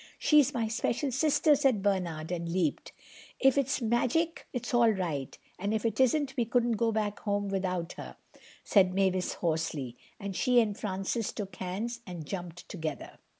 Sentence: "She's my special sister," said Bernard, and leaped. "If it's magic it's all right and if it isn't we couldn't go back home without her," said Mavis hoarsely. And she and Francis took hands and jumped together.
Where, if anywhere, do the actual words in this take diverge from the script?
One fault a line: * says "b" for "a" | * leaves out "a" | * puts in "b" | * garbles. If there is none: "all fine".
all fine